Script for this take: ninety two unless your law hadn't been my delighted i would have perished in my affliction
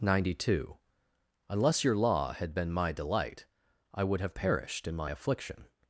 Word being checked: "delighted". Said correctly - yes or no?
no